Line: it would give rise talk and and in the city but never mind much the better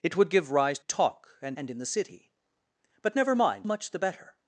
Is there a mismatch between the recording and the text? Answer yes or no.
no